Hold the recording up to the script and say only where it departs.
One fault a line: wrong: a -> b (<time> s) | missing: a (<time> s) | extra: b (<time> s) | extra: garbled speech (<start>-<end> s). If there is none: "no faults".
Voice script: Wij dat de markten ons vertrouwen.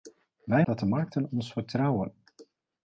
no faults